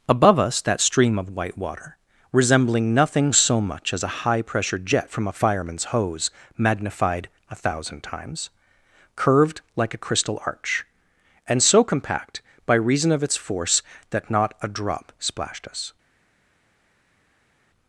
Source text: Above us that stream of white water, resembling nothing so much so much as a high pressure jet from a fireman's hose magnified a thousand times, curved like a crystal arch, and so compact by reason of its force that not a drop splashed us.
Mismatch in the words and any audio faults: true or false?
true